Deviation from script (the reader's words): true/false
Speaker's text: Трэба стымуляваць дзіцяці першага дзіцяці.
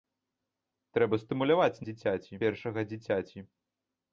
false